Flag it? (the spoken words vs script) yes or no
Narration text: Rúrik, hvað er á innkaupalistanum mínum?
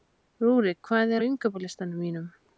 no